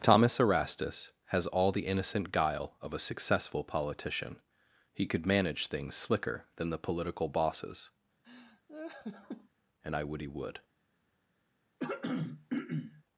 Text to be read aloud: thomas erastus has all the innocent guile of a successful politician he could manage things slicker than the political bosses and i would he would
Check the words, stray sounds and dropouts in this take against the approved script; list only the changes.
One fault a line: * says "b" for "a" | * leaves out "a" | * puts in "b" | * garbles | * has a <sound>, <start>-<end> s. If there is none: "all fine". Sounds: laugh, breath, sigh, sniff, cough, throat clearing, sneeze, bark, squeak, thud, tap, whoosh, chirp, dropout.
* has a laugh, 8.2-9.5 s
* has a throat clearing, 11.8-13.0 s